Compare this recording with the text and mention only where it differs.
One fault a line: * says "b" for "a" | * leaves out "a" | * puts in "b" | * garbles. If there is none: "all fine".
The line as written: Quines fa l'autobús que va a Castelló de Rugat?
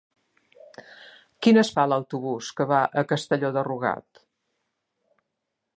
all fine